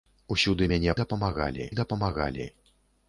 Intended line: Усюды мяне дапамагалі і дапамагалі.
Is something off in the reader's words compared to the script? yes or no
no